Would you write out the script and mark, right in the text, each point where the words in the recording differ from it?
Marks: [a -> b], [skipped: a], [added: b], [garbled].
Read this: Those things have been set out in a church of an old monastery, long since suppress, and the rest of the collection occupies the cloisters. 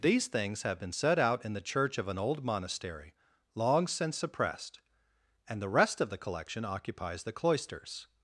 [Those -> These] things have been set out in [a -> the] church of an old monastery, long since [suppress, -> suppressed] and the rest of the collection occupies the cloisters.